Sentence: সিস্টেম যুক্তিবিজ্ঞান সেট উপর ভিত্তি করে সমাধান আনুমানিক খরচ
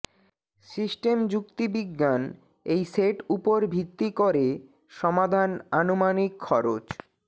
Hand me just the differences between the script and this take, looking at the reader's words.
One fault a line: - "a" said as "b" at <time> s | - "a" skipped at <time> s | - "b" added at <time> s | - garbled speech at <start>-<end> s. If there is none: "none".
- "এই" added at 2.6 s